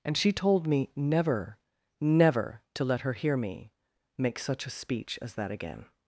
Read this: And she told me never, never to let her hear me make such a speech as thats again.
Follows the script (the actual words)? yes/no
no